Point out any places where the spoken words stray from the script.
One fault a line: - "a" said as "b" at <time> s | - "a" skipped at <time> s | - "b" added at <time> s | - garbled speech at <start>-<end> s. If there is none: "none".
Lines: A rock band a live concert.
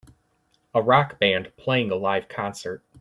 - "playing" added at 1.6 s